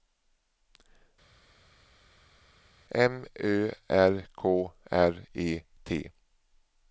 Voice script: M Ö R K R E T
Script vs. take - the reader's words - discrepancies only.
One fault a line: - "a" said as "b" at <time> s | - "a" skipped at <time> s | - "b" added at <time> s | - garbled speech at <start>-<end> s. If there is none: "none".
none